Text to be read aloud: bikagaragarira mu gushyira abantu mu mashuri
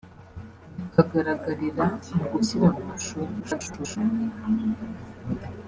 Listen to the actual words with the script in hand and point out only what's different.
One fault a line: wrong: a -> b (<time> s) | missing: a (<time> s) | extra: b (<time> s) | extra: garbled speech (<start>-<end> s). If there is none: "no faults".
missing: abantu (2.6 s)
extra: garbled speech (3.4-4.0 s)